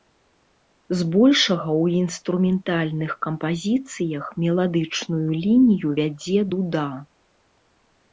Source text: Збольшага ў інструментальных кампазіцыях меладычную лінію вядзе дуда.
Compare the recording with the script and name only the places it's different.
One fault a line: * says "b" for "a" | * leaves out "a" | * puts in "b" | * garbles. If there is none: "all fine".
all fine